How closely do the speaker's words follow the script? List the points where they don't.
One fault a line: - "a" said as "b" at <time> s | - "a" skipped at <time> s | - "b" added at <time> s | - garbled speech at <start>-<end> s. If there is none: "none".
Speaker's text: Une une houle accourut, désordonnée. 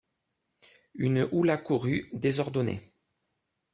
- "une" skipped at 1.3 s